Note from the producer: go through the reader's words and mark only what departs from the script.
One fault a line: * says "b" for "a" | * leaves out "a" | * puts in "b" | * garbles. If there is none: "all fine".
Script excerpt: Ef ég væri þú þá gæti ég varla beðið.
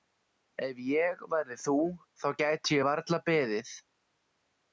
all fine